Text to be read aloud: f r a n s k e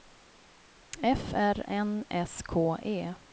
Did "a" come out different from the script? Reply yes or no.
yes